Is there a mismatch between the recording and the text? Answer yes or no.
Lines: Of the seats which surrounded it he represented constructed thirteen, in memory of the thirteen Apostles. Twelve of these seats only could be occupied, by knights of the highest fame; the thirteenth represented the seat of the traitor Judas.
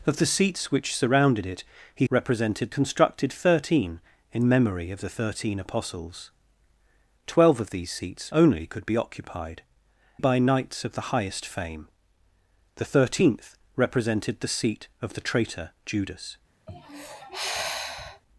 no